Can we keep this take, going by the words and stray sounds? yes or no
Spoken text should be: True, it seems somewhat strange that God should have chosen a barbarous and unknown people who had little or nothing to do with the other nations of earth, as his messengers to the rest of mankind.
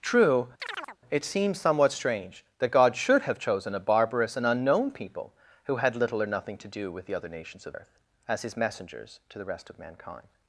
no